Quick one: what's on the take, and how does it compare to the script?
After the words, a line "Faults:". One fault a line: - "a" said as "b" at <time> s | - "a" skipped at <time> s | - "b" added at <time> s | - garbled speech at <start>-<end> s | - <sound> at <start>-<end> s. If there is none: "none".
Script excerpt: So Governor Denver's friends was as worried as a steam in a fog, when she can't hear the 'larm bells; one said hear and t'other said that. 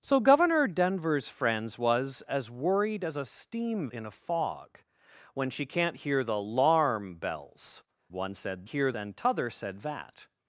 So Governor Denver's friends was as worried as a steam in a fog, when she can't hear the 'larm bells; one said hear and t'other said that.
Faults:
none